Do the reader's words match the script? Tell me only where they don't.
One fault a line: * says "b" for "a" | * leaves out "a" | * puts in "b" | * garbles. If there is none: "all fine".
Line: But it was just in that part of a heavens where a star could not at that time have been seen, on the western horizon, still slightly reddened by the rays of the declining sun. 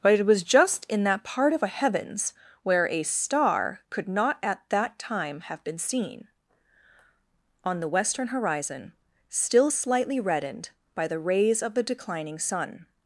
all fine